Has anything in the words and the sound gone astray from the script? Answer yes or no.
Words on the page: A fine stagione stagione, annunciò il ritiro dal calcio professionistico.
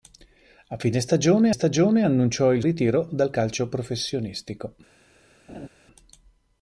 yes